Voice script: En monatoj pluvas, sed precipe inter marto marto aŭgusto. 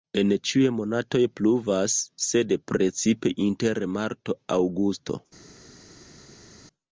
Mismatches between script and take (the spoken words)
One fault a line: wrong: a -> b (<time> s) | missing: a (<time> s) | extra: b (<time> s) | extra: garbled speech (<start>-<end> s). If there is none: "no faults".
extra: ĉiuj (0.5 s)
missing: marto (4.4 s)